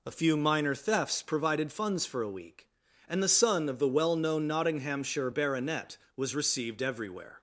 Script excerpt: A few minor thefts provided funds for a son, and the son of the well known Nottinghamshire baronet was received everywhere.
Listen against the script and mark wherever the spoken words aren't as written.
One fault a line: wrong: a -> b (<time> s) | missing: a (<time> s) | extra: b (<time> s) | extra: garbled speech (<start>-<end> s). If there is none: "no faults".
wrong: son -> week (2.3 s)